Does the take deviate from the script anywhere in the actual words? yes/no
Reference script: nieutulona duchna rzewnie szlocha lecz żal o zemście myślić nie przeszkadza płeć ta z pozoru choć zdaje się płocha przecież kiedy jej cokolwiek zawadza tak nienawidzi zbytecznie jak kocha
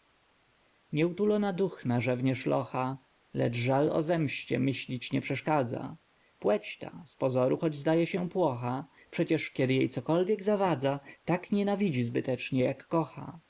no